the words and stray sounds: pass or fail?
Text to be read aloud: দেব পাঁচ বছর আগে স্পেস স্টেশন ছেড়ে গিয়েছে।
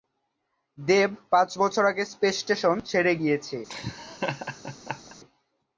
fail